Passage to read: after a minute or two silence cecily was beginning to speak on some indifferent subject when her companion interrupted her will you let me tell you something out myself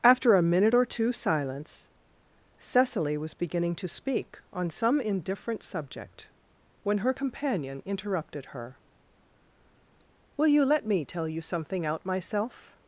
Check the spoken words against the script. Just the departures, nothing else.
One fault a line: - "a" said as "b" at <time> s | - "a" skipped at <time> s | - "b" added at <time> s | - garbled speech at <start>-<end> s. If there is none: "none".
none